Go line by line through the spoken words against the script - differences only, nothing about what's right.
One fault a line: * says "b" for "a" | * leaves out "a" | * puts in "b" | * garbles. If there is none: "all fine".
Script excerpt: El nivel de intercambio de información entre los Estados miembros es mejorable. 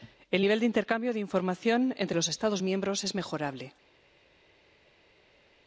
all fine